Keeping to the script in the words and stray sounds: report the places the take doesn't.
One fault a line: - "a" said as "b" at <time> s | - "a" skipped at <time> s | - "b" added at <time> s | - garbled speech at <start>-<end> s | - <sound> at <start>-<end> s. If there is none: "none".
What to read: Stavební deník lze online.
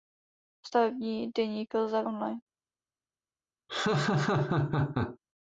- laugh at 3.7-5.2 s